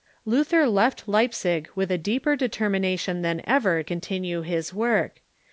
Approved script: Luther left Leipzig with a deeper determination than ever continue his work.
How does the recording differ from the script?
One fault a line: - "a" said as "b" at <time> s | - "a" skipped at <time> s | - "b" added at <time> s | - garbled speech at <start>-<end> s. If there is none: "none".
none